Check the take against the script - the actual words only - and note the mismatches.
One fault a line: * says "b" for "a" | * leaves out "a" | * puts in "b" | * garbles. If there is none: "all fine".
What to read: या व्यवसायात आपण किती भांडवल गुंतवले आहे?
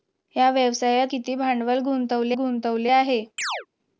* leaves out "आपण"
* puts in "गुंतवले"